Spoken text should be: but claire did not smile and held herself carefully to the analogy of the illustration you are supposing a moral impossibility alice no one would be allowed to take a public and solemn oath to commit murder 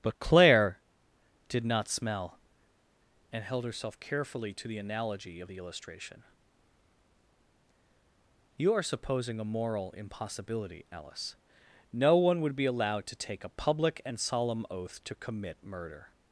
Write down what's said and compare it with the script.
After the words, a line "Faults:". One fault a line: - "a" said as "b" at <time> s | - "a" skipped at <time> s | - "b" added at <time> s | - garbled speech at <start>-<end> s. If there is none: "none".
but claire did not smell and held herself carefully to the analogy of the illustration you are supposing a moral impossibility alice no one would be allowed to take a public and solemn oath to commit murder
Faults:
- "smile" said as "smell" at 1.9 s